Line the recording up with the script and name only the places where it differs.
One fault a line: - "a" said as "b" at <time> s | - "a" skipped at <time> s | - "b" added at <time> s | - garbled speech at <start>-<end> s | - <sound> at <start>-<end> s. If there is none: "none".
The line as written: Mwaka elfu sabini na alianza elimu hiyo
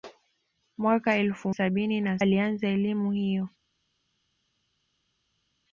none